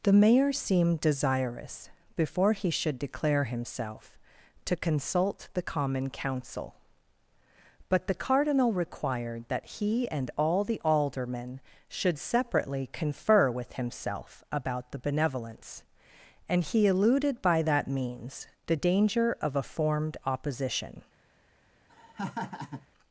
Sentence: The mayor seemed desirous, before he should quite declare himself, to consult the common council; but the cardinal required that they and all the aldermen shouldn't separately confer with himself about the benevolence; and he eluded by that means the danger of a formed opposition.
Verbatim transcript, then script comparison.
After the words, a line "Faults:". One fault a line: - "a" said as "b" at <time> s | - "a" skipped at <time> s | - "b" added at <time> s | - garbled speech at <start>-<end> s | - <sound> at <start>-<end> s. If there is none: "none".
The mayor seemed desirous, before he should declare himself, to consult the common council; but the cardinal required that he and all the aldermen should separately confer with himself about the benevolence; and he eluded by that means the danger of a formed opposition.
Faults:
- "quite" skipped at 3.0 s
- "they" said as "he" at 9.8 s
- "shouldn't" said as "should" at 11.9 s
- laugh at 21.9-22.9 s